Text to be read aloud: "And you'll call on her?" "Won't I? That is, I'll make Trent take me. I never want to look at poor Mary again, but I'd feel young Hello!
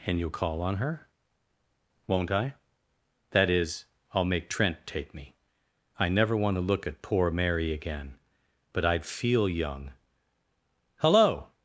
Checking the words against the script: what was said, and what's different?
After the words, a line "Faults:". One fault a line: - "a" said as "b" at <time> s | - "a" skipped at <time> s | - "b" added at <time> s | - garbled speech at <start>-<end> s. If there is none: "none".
"And you'll call on her?" "Won't I? That is, I'll make Trent take me. I never want to look at poor Mary again, but I'd feel young Hello!
Faults:
none